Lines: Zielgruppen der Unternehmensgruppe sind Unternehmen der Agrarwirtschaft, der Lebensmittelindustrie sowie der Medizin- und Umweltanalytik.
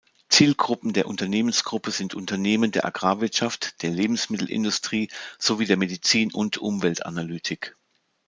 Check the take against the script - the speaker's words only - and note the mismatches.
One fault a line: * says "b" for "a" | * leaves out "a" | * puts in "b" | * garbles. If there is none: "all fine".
all fine